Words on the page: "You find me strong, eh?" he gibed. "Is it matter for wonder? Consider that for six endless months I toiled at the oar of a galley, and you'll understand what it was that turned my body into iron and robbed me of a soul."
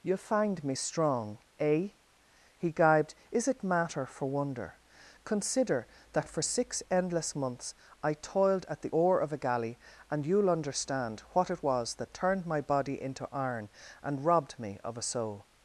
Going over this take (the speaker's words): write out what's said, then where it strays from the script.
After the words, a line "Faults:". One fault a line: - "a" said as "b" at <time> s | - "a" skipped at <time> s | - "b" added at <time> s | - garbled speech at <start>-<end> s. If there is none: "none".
"You find me strong, eh?" he gibed. "Is it matter for wonder? Consider that for six endless months I toiled at the oar of a galley, and you'll understand what it was that turned my body into iron and robbed me of a soul."
Faults:
none